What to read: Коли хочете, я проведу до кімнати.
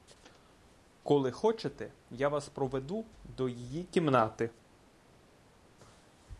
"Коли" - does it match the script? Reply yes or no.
yes